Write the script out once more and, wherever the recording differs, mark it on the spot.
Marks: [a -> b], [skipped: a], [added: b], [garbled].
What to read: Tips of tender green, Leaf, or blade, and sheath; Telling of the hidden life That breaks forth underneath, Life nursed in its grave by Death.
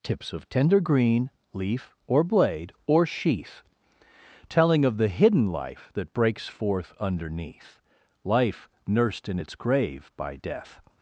Tips of tender green, Leaf, or blade, [and -> or] sheath; Telling of the hidden life That breaks forth underneath, Life nursed in its grave by Death.